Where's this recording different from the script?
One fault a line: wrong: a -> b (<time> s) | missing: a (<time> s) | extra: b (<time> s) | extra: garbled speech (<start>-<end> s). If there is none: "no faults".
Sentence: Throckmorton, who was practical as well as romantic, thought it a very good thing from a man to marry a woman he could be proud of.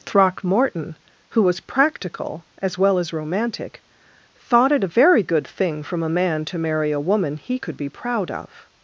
no faults